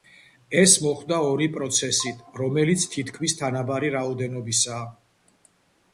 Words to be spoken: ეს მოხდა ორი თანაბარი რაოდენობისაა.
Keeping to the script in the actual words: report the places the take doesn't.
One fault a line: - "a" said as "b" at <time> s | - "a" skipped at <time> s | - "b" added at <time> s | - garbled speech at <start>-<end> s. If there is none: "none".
- "პროცესით რომელიც თითქმის" added at 1.6 s